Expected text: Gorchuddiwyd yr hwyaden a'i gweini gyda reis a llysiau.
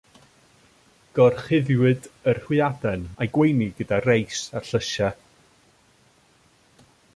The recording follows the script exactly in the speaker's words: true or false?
true